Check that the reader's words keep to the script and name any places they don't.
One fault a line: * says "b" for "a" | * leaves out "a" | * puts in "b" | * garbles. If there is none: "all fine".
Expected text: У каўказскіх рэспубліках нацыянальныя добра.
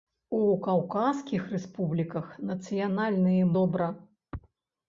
all fine